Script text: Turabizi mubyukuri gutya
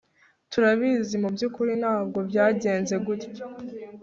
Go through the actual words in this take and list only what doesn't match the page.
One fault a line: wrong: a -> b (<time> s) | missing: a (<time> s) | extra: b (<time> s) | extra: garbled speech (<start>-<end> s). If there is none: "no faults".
extra: ntabwo byagenze (1.8 s)